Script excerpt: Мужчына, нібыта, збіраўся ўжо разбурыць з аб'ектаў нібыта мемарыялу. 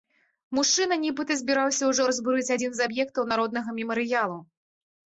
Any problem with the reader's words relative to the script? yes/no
yes